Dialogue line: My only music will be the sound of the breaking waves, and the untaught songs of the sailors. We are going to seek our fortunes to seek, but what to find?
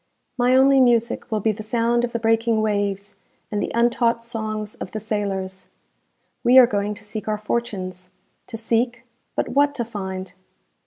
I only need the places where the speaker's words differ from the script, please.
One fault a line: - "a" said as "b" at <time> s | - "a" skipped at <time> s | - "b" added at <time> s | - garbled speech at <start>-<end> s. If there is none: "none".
none